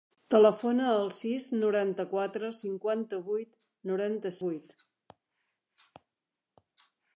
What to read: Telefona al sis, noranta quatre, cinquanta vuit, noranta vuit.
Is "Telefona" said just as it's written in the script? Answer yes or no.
yes